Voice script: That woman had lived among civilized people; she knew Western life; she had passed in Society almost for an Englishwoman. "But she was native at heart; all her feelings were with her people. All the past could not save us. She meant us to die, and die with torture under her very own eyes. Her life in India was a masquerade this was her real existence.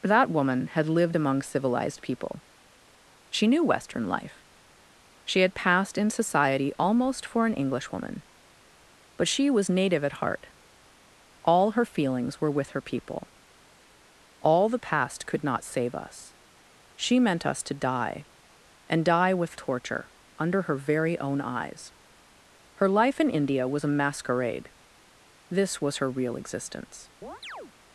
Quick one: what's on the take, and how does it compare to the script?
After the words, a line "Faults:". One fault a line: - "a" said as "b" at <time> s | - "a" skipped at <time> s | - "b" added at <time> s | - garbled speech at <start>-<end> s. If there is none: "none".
That woman had lived among civilized people; she knew Western life; she had passed in Society almost for an Englishwoman. "But she was native at heart; all her feelings were with her people. All the past could not save us. She meant us to die, and die with torture under her very own eyes. Her life in India was a masquerade this was her real existence.
Faults:
none